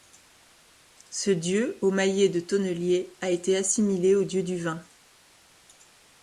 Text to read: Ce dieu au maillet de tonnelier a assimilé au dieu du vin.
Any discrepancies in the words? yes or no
yes